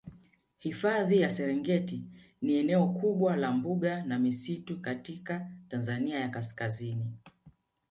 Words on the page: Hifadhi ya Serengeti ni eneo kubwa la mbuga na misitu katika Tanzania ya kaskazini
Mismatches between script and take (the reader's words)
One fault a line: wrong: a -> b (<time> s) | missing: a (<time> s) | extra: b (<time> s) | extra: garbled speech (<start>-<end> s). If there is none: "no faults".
no faults